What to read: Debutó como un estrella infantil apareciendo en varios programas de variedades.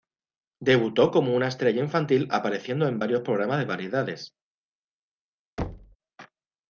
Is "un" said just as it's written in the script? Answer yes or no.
no